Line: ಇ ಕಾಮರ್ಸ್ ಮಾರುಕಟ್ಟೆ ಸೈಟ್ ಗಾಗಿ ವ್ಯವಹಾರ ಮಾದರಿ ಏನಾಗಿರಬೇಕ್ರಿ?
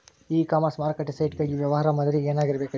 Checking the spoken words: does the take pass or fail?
pass